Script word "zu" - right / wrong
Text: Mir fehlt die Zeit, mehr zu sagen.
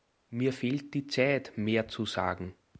right